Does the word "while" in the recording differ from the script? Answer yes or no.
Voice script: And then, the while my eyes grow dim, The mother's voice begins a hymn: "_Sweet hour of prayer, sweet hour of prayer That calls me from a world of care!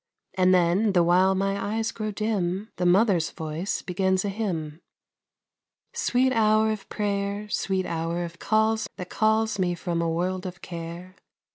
no